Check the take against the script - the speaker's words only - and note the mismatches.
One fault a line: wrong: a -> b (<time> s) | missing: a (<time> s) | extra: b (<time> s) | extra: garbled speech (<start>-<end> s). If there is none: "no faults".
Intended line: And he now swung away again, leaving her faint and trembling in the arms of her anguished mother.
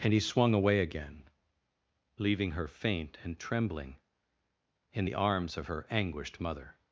missing: now (0.2 s)